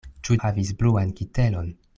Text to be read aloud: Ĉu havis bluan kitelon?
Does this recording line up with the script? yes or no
yes